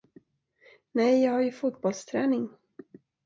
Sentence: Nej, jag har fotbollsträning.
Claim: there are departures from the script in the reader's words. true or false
true